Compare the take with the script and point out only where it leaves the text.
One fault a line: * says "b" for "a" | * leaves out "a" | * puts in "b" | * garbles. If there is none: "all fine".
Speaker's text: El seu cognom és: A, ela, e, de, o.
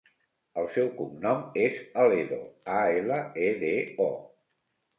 * puts in "Aledo"